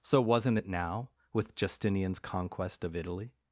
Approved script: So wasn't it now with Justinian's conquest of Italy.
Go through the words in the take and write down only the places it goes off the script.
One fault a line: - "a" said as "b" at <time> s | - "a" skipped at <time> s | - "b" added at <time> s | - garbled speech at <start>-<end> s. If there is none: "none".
none